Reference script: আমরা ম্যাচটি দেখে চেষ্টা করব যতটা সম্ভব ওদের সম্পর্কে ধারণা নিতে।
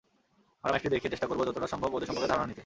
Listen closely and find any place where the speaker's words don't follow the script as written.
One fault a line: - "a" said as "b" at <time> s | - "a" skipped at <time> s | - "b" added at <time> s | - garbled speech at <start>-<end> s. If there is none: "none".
none